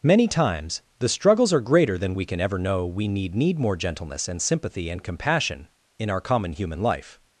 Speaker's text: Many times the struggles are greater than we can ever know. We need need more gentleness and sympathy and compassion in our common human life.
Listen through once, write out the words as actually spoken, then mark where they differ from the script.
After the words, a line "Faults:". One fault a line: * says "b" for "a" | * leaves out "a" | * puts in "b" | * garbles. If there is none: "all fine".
Many times the struggles are greater than we can ever know. We need need more gentleness and sympathy and compassion in our common human life.
Faults:
all fine